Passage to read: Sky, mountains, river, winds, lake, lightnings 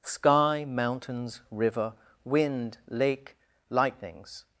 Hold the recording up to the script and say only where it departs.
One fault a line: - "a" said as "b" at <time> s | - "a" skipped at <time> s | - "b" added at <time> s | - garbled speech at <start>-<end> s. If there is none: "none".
- "winds" said as "wind" at 2.2 s